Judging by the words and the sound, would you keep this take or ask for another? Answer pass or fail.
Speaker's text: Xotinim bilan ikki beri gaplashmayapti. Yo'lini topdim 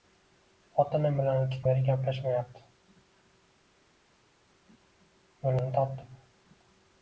pass